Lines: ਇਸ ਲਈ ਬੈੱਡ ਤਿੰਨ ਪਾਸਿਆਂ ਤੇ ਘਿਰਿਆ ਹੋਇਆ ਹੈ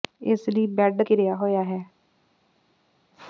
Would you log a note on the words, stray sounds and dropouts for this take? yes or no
yes